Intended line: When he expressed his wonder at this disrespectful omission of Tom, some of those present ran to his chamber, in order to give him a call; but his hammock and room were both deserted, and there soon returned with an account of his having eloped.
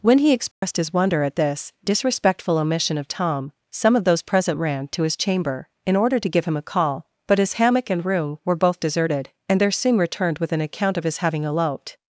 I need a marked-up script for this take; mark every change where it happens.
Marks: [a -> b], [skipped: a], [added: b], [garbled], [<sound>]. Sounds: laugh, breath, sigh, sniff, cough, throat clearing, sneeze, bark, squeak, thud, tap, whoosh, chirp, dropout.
When he expressed [dropout] his wonder at this disrespectful omission of Tom, some of those present ran to his chamber, in order to give him a call; but his hammock and room were both deserted, and there soon returned with an account of his having eloped.